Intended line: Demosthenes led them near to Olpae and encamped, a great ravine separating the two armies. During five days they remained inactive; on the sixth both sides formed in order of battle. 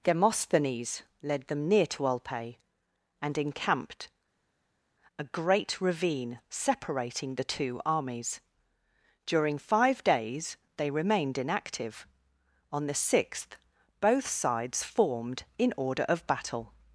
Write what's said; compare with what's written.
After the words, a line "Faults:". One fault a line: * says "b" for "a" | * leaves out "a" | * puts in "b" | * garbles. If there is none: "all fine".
Demosthenes led them near to Olpae and encamped, a great ravine separating the two armies. During five days they remained inactive; on the sixth both sides formed in order of battle.
Faults:
all fine